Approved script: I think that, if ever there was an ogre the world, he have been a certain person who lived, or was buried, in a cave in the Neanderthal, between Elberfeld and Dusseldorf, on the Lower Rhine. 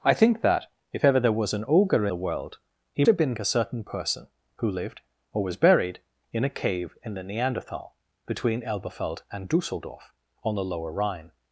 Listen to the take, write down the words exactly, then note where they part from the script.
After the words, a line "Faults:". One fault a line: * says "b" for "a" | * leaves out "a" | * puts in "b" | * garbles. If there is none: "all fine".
I think that, if ever there was an ogre the world, he have been a certain person who lived, or was buried, in a cave in the Neanderthal, between Elberfeld and Dusseldorf, on the Lower Rhine.
Faults:
all fine